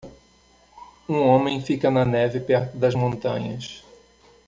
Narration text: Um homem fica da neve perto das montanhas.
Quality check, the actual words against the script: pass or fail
fail